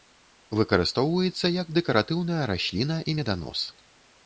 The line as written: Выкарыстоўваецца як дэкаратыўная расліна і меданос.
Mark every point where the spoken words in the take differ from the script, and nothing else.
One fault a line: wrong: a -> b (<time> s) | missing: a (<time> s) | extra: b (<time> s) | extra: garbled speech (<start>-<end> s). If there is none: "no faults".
no faults